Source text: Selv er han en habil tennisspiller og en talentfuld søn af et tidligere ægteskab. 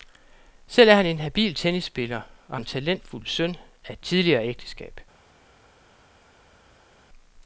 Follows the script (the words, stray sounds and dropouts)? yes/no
yes